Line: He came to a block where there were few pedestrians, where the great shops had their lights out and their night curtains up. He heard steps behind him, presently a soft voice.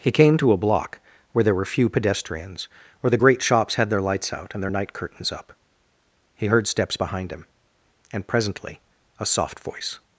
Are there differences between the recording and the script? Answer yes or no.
yes